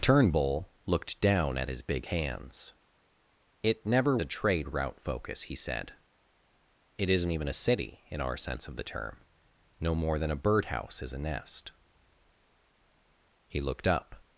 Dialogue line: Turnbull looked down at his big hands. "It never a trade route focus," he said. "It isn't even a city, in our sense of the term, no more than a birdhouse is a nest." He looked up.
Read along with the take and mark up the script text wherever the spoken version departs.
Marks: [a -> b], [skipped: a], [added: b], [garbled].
Turnbull looked down at his big hands. "It never a trade route focus," he said. "It isn't even a city, in our sense of the term, no more than a birdhouse is a nest." He looked up.